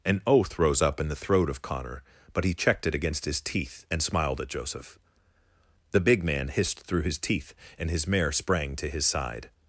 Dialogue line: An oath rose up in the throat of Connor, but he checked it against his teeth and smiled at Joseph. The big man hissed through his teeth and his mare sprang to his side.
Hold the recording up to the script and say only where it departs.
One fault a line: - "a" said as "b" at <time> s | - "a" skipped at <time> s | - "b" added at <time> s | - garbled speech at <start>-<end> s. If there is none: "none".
none